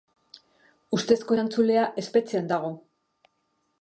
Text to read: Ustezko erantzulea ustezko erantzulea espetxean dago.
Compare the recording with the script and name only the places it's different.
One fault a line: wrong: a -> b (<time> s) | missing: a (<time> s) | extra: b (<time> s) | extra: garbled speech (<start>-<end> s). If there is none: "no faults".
missing: ustezko erantzulea (1.9 s)